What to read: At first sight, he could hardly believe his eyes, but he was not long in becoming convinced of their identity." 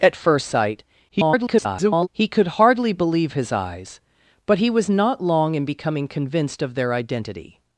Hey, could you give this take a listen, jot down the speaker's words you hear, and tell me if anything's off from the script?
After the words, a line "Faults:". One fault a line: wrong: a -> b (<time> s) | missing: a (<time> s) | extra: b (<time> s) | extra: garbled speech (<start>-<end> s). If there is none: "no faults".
At first sight, [garbled] he could hardly believe his eyes, but he was not long in becoming convinced of their identity."
Faults:
extra: garbled speech (1.1-2.1 s)